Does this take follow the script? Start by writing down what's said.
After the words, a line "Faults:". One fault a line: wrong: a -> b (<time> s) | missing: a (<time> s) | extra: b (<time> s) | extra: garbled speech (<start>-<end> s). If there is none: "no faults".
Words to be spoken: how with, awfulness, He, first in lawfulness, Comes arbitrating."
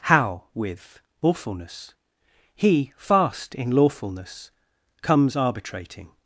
how with, awfulness, He, fast in lawfulness, Comes arbitrating."
Faults:
wrong: first -> fast (3.0 s)